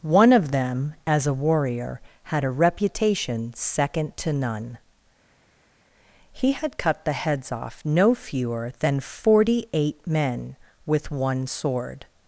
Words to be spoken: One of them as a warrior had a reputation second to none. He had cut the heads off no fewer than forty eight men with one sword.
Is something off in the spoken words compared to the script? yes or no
no